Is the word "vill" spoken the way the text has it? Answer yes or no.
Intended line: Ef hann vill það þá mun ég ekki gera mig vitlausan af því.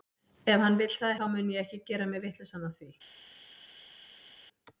yes